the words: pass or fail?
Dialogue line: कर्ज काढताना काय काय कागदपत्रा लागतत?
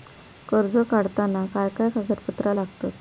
pass